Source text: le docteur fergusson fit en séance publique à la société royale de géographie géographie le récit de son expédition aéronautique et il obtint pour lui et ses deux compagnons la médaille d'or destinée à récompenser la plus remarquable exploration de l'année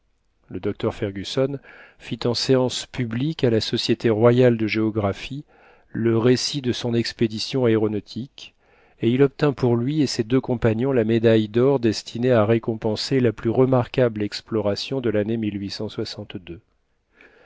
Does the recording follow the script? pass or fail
fail